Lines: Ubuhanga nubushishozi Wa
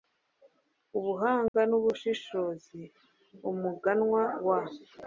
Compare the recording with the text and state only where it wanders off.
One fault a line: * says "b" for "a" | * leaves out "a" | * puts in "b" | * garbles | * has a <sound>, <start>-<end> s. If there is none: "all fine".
* has a dropout, 1.5-1.5 s
* puts in "Umuganwa"